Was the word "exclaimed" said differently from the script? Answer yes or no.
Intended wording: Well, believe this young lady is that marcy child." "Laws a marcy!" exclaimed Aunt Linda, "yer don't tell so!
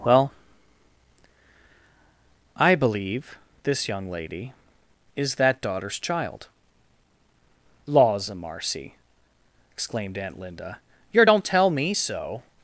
no